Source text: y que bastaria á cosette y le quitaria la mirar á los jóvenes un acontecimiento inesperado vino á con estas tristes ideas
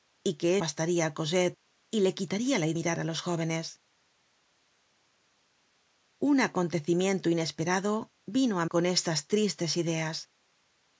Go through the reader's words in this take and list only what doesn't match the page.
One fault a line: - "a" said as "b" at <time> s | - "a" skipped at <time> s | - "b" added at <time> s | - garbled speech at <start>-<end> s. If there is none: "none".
none